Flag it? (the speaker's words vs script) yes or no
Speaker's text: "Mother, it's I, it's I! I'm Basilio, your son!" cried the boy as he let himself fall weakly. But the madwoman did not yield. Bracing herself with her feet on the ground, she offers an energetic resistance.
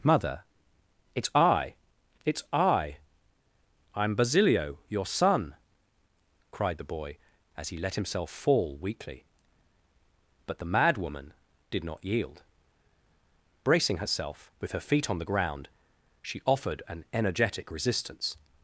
yes